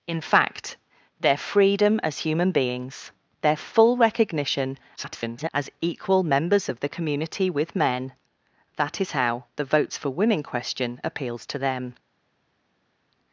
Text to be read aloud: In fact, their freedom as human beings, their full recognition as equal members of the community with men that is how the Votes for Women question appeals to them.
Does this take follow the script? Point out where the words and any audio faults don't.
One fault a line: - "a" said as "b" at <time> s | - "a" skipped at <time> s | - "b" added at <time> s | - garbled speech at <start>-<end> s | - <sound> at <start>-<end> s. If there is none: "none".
- garbled speech at 5.0-5.5 s